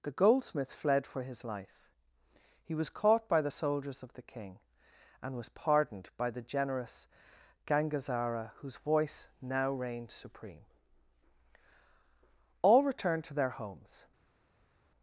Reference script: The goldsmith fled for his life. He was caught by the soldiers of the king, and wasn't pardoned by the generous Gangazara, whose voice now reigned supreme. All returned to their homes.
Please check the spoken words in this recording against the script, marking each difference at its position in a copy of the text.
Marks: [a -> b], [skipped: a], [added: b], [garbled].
The goldsmith fled for his life. He was caught by the soldiers of the king, and [wasn't -> was] pardoned by the generous Gangazara, whose voice now reigned supreme. All returned to their homes.